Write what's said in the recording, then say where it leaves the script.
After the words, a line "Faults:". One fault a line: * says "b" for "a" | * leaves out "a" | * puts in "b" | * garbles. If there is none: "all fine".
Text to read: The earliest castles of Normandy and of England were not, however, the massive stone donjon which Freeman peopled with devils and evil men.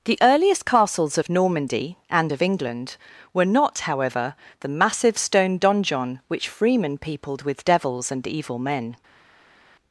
The earliest castles of Normandy and of England were not, however, the massive stone donjon which Freeman peopled with devils and evil men.
Faults:
all fine